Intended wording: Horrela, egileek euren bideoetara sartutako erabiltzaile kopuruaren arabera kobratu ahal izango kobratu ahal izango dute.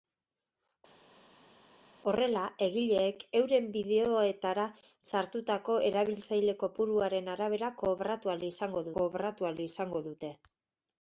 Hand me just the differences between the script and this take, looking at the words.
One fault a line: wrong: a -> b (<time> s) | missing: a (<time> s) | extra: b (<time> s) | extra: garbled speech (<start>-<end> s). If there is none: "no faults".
no faults